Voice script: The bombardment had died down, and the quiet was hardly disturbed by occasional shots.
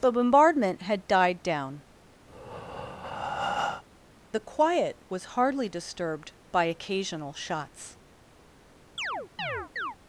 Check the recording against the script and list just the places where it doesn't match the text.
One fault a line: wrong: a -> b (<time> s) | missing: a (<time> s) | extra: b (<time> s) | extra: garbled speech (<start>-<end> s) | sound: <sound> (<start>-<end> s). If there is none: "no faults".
missing: and (1.8 s)
sound: breath (2.3-3.8 s)
sound: chirp (9.0-10.0 s)